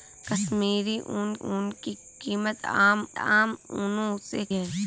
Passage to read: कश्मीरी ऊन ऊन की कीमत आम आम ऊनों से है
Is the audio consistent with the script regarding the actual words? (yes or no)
yes